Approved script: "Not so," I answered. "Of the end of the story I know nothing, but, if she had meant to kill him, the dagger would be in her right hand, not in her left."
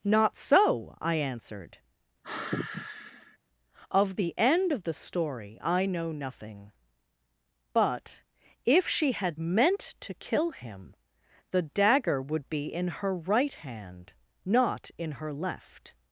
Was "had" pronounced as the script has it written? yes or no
yes